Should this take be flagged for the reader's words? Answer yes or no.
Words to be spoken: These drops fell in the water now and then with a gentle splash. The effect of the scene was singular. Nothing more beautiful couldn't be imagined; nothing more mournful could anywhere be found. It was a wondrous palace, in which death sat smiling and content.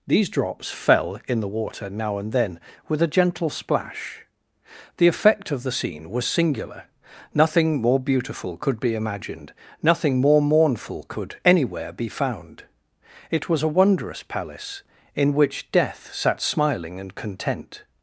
yes